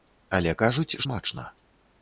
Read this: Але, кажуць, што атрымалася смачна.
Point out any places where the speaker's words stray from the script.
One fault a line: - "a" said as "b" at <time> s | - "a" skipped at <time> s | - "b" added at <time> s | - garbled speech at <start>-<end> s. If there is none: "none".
- "што атрымалася" skipped at 1.0 s